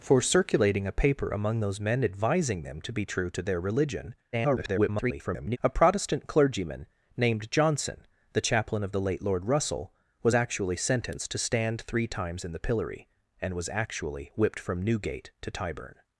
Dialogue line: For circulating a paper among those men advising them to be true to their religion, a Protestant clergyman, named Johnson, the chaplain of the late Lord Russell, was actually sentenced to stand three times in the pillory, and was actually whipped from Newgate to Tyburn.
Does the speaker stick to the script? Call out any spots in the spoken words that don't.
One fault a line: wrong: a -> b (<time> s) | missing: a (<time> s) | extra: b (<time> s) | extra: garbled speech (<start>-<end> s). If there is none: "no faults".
extra: garbled speech (4.3-5.6 s)